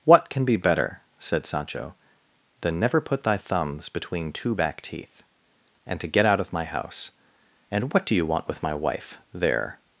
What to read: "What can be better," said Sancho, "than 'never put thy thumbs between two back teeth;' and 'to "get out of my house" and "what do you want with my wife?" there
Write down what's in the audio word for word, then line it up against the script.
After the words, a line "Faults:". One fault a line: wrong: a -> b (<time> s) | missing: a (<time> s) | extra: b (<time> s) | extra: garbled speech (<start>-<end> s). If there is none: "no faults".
"What can be better," said Sancho, "than 'never put thy thumbs between two back teeth;' and 'to "get out of my house" and "what do you want with my wife?" there
Faults:
no faults